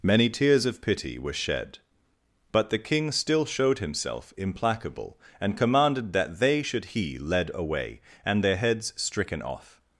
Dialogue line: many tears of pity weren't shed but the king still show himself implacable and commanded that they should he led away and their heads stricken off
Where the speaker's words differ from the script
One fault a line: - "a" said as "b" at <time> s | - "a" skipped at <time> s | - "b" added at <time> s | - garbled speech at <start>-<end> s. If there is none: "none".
- "weren't" said as "were" at 1.2 s
- "show" said as "showed" at 3.4 s